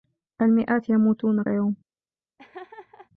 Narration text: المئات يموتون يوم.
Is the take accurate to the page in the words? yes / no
yes